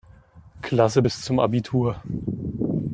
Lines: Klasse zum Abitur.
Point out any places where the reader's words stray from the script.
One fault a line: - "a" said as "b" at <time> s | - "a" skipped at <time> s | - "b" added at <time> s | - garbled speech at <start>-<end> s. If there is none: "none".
- "bis" added at 1.0 s